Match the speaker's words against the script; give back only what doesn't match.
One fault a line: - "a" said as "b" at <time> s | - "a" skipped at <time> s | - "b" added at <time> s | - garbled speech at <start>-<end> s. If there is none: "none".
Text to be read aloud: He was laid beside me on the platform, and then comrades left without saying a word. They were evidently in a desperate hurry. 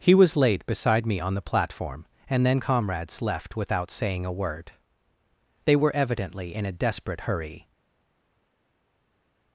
none